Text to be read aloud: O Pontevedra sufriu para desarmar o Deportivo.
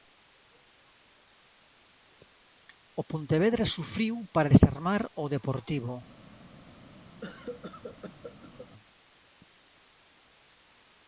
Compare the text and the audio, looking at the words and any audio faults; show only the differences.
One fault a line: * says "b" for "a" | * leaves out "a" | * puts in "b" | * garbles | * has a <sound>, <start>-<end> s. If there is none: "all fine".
* has a cough, 7.2-8.7 s